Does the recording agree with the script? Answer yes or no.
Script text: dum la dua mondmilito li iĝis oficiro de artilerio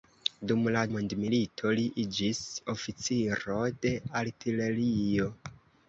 no